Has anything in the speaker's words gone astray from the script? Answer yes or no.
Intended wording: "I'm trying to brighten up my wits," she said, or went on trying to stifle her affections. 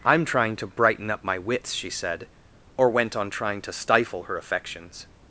no